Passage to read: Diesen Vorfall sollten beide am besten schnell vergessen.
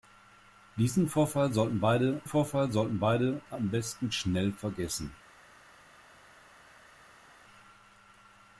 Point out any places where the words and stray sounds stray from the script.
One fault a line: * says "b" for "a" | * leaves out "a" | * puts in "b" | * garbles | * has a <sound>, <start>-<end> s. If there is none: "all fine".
* puts in "Vorfall sollten beide"